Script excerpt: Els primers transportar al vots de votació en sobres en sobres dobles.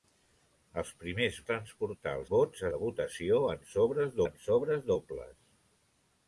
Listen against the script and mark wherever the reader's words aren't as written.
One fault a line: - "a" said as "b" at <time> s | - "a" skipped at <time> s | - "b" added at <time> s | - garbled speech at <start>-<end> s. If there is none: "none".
none